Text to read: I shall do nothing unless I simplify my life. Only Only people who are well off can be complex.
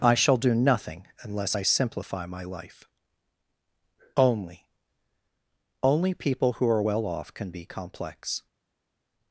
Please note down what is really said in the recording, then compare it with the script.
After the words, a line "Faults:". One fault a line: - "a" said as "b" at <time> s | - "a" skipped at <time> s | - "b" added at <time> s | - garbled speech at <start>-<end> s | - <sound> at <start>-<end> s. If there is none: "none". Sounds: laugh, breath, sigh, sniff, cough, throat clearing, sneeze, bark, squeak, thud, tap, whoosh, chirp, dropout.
I shall do nothing unless I simplify my life. Only Only people who are well off can be complex.
Faults:
none